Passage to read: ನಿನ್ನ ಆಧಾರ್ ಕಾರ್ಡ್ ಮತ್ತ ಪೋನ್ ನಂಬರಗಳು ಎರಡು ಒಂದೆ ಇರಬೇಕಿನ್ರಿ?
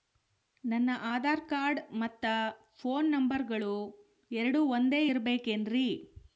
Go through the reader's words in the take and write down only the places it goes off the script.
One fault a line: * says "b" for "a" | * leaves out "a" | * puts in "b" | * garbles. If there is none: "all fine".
* says "ನನ್ನ" for "ನಿನ್ನ"